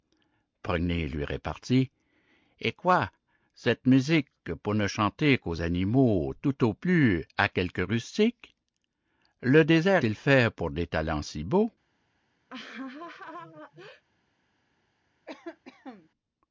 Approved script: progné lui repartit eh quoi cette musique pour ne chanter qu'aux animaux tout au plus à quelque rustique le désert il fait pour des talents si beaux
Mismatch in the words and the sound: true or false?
true